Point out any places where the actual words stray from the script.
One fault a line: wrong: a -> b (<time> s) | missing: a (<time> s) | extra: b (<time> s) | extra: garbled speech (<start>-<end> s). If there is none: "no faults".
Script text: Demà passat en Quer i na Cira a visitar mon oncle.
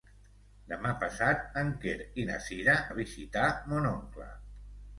no faults